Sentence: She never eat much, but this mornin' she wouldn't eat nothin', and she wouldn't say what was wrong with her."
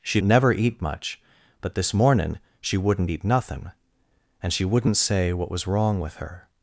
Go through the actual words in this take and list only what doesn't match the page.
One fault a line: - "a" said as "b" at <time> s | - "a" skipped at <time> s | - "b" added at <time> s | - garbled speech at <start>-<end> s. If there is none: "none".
none